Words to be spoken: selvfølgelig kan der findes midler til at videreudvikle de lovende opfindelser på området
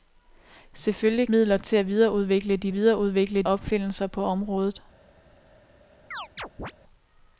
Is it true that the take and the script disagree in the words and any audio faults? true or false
true